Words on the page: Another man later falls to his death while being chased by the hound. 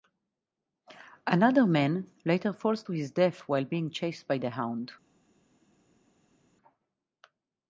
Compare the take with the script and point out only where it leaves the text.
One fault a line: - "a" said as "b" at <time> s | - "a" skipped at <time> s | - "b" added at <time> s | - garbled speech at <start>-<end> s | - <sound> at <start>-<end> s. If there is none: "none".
none